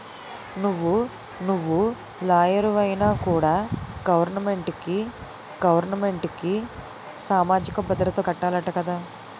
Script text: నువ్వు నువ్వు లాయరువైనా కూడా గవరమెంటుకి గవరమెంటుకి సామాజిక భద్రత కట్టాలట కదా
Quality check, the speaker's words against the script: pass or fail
pass